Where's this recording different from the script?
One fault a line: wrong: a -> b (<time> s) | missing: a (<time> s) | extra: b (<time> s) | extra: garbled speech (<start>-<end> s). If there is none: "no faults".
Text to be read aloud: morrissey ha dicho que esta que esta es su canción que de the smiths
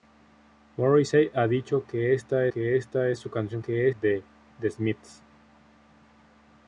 no faults